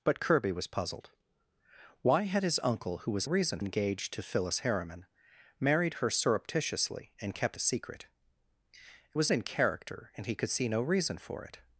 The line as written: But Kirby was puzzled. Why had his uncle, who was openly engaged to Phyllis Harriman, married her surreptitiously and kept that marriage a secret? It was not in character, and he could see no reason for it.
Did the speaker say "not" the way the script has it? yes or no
no